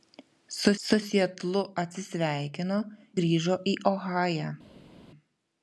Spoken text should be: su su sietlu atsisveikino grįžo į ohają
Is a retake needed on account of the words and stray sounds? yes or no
no